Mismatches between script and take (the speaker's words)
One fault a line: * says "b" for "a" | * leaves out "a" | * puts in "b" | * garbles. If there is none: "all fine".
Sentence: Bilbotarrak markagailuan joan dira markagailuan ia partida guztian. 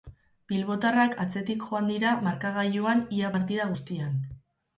* says "atzetik" for "markagailuan"